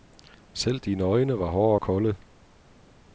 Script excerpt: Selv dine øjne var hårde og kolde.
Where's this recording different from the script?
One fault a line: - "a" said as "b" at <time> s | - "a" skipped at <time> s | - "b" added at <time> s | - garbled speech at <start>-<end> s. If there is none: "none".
none